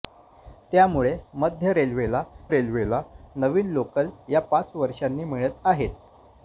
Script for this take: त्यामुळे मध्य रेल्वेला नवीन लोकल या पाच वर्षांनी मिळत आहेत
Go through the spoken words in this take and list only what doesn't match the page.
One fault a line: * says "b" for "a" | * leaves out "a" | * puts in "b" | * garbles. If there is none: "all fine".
* puts in "रेल्वेला"